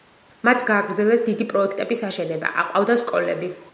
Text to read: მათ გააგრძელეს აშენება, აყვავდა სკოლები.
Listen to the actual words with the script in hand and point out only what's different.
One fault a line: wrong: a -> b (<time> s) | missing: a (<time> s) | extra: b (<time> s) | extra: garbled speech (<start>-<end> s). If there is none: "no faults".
extra: დიდი პროექტების (1.2 s)